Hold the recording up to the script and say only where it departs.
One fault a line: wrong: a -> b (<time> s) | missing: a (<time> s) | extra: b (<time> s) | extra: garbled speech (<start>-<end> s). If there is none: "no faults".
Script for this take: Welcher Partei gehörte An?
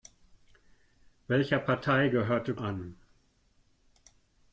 no faults